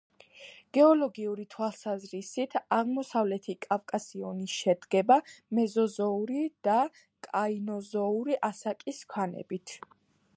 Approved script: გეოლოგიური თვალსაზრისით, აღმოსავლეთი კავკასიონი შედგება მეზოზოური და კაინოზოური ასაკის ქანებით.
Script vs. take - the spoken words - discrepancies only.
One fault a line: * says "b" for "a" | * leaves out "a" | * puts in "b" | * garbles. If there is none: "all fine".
all fine